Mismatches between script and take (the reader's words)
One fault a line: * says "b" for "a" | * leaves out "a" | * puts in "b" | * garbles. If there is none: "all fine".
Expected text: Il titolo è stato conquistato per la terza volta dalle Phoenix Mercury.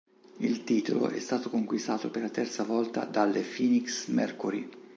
all fine